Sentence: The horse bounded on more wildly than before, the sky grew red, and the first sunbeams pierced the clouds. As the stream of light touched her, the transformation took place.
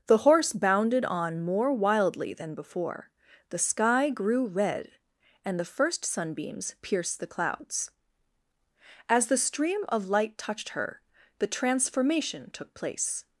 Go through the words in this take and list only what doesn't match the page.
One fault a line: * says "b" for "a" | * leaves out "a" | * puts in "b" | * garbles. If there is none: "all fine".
all fine